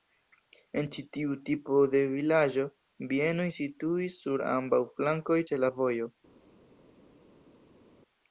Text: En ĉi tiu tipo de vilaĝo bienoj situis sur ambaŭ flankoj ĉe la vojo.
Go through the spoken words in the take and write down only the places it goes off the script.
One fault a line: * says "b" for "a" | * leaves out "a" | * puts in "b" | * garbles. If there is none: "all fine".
all fine